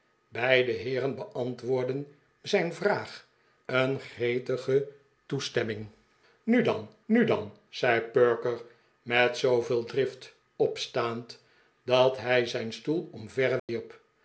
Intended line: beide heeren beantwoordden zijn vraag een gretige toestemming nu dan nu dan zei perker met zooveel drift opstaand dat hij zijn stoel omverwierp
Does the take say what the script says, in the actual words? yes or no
yes